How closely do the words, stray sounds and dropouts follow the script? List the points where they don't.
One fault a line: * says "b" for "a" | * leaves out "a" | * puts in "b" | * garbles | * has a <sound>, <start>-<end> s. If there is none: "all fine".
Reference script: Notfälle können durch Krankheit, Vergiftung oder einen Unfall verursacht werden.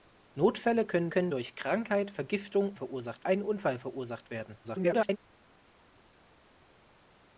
* puts in "können"
* says "verursacht" for "oder"
* garbles